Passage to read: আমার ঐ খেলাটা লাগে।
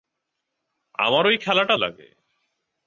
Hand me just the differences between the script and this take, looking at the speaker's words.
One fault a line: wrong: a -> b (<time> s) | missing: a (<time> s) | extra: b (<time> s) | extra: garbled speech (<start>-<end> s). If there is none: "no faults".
no faults